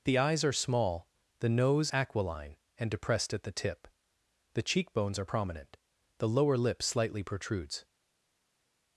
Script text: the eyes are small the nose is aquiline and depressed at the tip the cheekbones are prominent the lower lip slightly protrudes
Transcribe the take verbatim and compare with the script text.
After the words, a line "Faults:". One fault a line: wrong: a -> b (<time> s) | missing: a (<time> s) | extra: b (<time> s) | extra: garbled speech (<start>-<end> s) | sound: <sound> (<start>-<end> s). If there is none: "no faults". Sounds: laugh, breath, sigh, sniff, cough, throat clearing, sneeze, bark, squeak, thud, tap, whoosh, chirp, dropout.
the eyes are small the nose aquiline and depressed at the tip the cheekbones are prominent the lower lip slightly protrudes
Faults:
missing: is (1.9 s)